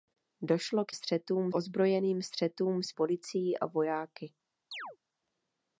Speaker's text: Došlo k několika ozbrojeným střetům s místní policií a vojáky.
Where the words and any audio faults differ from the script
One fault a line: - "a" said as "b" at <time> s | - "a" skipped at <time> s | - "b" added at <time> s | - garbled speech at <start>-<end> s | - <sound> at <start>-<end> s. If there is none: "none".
- "několika" said as "střetům" at 0.9 s
- "místní" skipped at 2.9 s
- chirp at 4.7-5.0 s